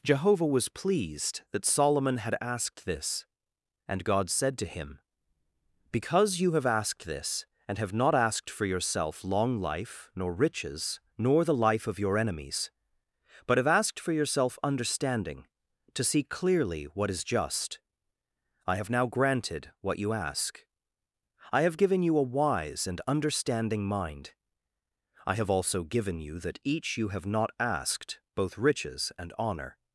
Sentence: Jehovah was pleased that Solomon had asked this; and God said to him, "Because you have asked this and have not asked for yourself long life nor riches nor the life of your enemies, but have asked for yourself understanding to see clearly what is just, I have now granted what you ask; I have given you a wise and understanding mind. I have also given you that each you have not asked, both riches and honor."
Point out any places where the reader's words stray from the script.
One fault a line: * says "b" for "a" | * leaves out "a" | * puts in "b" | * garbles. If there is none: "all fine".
all fine